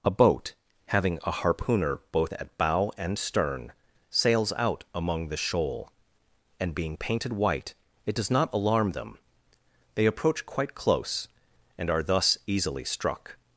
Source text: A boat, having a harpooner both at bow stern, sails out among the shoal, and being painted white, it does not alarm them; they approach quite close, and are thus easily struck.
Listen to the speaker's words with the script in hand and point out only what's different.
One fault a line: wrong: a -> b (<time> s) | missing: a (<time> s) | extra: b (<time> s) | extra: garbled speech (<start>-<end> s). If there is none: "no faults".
extra: and (3.0 s)